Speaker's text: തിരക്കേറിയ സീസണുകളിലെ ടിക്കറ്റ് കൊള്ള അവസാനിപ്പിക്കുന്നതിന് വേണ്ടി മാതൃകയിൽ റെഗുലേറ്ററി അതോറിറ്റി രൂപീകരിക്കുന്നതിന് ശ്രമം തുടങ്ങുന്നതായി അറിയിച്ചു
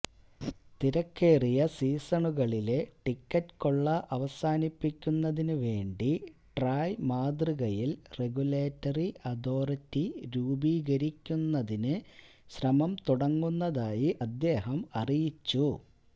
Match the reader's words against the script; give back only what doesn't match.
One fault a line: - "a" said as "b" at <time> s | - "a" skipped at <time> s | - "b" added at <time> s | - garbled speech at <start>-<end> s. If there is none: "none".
- "ട്രായ്" added at 6.6 s
- "അദ്ദേഹം" added at 14.3 s